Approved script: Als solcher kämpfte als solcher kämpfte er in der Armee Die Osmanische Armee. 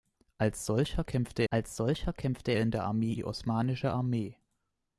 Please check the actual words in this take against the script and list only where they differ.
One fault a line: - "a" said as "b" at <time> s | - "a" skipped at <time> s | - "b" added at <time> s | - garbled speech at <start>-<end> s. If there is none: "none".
none